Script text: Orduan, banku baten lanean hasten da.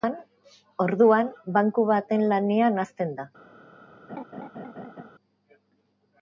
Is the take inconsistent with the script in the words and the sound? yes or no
yes